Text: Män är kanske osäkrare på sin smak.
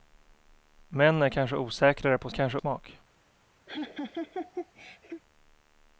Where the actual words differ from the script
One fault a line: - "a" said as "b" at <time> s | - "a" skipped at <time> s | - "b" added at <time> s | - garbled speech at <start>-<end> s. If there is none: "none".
- "sin" said as "kanske" at 2.3 s